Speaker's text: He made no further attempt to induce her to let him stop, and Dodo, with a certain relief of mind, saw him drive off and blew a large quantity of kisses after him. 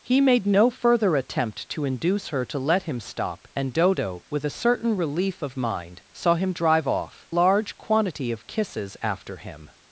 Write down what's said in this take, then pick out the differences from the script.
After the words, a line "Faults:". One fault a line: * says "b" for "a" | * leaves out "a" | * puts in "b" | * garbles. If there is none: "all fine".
He made no further attempt to induce her to let him stop, and Dodo, with a certain relief of mind, saw him drive off large quantity of kisses after him.
Faults:
* leaves out "and blew a"